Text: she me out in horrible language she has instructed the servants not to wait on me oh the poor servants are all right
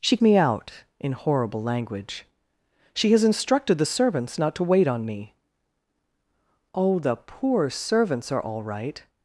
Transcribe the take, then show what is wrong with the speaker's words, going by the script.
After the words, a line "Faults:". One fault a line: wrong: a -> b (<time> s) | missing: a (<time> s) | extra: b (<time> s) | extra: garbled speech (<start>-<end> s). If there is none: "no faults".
she me out in horrible language she has instructed the servants not to wait on me oh the poor servants are all right
Faults:
no faults